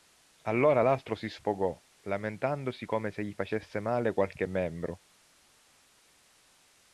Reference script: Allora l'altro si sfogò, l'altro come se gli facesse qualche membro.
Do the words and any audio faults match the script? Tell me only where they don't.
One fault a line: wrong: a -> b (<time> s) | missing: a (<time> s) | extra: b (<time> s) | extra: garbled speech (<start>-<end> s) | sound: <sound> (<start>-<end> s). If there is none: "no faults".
wrong: l'altro -> lamentandosi (2.0 s)
extra: male (3.8 s)